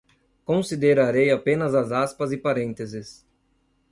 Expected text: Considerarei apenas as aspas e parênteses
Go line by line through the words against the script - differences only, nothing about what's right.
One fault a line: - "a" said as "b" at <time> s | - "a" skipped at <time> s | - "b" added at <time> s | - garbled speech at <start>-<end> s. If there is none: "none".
none